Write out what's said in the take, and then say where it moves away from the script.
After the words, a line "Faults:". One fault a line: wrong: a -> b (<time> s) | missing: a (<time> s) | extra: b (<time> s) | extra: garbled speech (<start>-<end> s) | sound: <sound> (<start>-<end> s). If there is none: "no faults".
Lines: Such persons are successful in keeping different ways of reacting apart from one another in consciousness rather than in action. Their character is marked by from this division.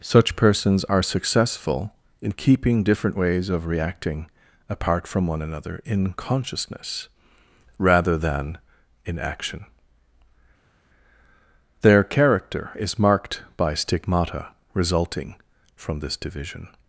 Such persons are successful in keeping different ways of reacting apart from one another in consciousness rather than in action. Their character is marked by stigmata resulting from this division.
Faults:
extra: stigmata resulting (13.7 s)